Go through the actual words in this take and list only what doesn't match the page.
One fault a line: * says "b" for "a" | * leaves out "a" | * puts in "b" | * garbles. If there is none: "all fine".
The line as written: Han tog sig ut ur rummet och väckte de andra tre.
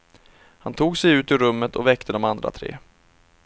all fine